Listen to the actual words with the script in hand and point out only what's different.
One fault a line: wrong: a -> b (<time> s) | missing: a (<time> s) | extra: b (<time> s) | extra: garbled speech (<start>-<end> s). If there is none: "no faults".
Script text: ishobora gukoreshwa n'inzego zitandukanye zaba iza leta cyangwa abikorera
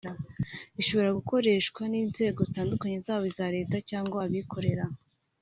no faults